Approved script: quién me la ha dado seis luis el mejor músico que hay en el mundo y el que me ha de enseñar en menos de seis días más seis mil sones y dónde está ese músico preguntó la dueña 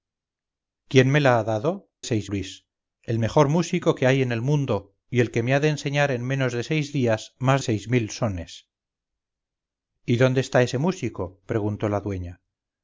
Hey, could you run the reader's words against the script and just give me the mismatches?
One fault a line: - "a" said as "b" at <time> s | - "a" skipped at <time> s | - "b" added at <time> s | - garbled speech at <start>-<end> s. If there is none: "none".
none